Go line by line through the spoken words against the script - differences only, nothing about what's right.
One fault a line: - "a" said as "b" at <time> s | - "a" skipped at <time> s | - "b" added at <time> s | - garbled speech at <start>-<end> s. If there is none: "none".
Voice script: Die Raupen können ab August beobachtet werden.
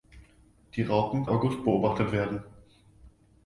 - "können ab" skipped at 1.3 s